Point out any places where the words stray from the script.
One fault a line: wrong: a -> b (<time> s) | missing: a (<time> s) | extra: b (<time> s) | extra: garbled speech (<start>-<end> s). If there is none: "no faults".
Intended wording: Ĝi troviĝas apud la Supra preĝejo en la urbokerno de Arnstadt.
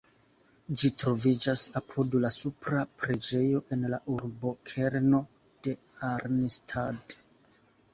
no faults